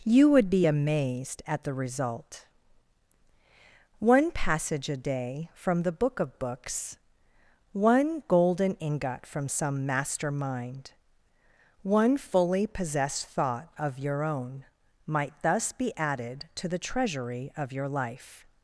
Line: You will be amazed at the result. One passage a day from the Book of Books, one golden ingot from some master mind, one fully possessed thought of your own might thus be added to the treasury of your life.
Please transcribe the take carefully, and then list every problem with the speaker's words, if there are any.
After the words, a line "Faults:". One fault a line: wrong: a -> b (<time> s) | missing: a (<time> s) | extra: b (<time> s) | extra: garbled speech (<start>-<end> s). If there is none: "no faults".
You would be amazed at the result. One passage a day from the Book of Books, one golden ingot from some master mind, one fully possessed thought of your own might thus be added to the treasury of your life.
Faults:
wrong: will -> would (0.3 s)